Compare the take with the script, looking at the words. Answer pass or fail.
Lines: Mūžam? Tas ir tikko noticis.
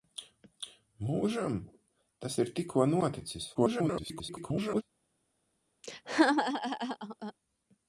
fail